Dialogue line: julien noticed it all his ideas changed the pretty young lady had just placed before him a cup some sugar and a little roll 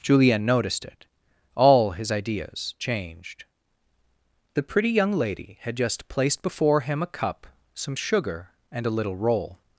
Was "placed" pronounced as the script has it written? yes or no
yes